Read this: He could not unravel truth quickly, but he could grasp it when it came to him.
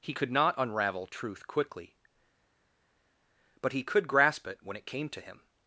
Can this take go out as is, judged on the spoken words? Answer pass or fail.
pass